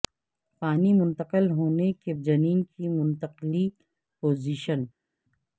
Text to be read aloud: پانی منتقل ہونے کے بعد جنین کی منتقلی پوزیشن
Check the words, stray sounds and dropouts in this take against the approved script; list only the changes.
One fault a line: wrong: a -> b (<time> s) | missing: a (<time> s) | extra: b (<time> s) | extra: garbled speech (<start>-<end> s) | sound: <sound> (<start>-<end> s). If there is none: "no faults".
missing: بعد (2.1 s)